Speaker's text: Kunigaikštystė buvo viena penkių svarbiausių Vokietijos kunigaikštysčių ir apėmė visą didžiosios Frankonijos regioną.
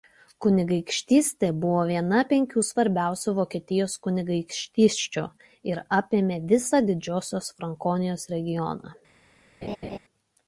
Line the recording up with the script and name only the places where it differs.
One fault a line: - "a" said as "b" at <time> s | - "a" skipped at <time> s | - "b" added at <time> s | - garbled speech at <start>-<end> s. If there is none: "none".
none